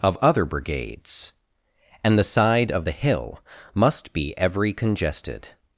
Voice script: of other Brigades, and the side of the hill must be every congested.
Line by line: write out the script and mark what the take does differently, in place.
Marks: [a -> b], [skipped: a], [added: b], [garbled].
of other Brigades, and the side of the hill must be every congested.